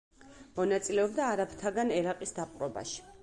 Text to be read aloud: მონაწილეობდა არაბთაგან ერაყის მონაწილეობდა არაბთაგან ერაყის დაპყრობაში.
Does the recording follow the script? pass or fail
fail